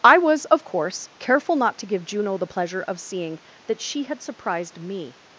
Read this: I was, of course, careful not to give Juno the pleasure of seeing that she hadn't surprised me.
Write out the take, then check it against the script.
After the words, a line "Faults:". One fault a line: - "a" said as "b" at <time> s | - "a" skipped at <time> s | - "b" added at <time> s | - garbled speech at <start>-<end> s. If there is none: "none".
I was, of course, careful not to give Juno the pleasure of seeing that she had surprised me.
Faults:
- "hadn't" said as "had" at 4.0 s